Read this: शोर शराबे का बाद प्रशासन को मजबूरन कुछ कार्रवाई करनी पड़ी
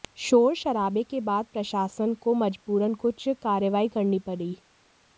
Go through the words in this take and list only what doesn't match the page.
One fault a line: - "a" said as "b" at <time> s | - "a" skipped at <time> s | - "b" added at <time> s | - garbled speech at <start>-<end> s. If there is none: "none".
- "का" said as "के" at 1.0 s